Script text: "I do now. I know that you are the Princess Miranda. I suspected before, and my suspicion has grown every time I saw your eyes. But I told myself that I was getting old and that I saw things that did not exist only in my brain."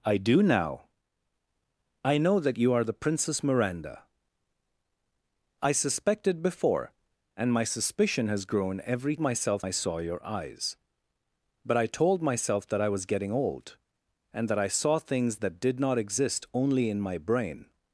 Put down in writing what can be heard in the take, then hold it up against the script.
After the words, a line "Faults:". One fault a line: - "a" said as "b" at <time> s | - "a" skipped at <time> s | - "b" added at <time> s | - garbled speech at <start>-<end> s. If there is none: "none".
"I do now. I know that you are the Princess Miranda. I suspected before, and my suspicion has grown every myself I saw your eyes. But I told myself that I was getting old and that I saw things that did not exist only in my brain."
Faults:
- "time" said as "myself" at 9.2 s